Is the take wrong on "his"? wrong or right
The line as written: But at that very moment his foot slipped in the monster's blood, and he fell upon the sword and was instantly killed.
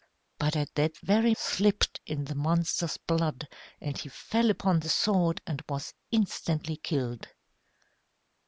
wrong